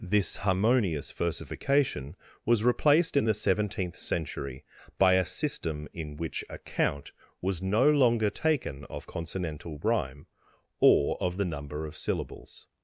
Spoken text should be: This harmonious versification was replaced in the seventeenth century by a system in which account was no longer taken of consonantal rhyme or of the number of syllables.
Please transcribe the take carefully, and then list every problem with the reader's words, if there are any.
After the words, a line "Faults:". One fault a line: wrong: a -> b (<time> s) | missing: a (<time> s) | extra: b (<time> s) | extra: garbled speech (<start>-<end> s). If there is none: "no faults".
This harmonious versification was replaced in the seventeenth century by a system in which account was no longer taken of consonantal rhyme or of the number of syllables.
Faults:
no faults